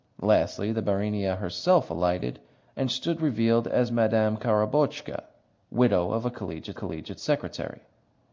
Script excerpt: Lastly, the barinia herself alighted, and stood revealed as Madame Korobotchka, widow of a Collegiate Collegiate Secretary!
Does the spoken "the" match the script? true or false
true